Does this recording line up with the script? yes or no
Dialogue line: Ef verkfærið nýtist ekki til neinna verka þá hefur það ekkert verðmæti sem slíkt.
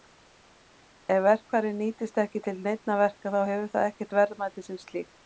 yes